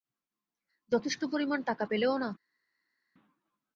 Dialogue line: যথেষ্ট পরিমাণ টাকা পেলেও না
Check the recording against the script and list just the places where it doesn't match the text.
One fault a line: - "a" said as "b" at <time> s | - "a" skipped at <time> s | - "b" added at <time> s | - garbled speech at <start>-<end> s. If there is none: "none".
none